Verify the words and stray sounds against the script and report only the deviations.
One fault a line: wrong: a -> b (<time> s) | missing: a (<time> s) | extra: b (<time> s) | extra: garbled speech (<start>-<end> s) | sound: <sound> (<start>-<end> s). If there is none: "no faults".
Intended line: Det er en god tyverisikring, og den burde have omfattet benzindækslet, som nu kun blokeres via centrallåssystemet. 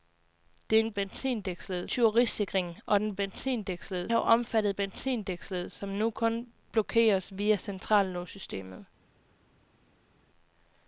wrong: god -> benzindækslet (0.9 s)
wrong: burde -> benzindækslet (3.2 s)